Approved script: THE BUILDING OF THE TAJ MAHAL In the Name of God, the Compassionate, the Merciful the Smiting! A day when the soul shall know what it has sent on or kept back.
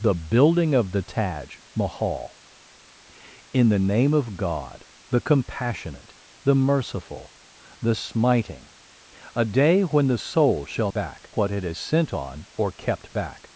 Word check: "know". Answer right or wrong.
wrong